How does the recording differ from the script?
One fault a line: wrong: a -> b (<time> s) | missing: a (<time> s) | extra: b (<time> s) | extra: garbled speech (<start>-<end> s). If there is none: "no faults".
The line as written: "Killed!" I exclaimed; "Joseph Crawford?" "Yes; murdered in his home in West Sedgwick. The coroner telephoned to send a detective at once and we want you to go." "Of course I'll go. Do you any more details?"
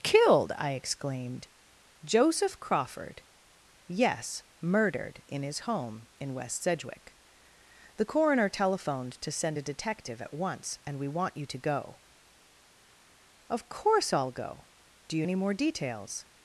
no faults